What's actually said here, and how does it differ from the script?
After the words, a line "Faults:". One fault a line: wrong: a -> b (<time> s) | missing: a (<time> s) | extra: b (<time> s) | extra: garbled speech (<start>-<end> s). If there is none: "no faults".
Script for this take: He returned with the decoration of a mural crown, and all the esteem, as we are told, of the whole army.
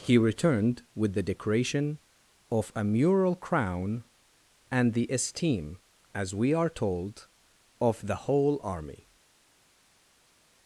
He returned with the decoration of a mural crown, and the esteem, as we are told, of the whole army.
Faults:
missing: all (4.9 s)